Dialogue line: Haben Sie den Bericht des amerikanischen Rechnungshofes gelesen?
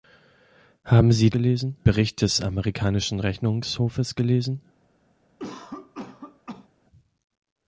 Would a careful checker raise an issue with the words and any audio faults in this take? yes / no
yes